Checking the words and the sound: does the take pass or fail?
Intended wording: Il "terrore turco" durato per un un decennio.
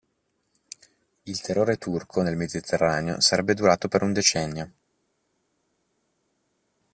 fail